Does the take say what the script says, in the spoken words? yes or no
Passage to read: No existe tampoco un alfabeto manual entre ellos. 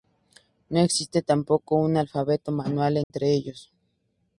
yes